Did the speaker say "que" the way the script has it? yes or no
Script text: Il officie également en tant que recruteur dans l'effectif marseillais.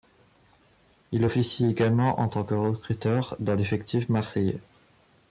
yes